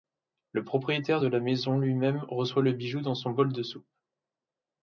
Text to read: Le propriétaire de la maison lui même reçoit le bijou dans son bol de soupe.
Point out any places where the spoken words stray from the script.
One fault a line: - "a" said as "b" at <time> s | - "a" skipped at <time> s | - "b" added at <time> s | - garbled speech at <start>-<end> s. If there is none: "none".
none